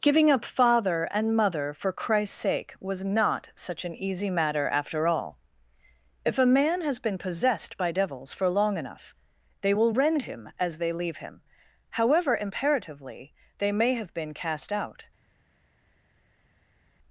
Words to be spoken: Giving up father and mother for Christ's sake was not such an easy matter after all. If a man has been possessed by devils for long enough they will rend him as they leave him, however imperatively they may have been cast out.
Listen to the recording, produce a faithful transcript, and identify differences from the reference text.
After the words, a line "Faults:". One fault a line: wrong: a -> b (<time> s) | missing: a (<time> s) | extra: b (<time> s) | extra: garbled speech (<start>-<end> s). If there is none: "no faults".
Giving up father and mother for Christ's sake was not such an easy matter after all. If a man has been possessed by devils for long enough they will rend him as they leave him, however imperatively they may have been cast out.
Faults:
no faults